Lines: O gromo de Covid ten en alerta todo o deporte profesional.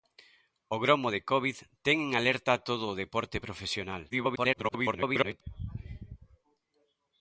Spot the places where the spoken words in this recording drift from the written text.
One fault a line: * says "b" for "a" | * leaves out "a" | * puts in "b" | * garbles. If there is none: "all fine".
* garbles